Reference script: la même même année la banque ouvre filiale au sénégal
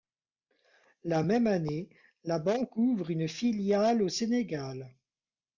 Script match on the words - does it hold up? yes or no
no